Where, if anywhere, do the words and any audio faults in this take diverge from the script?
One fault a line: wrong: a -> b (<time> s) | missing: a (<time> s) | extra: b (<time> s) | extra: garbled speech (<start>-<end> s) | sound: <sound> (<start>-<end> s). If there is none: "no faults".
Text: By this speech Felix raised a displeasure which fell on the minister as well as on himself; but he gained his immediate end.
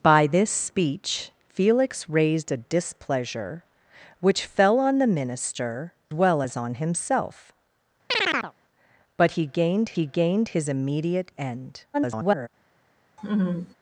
missing: as (5.9 s)
sound: chirp (8.1-8.5 s)
extra: he gained (9.9 s)
extra: garbled speech (11.9-12.5 s)
sound: laugh (13.2-13.7 s)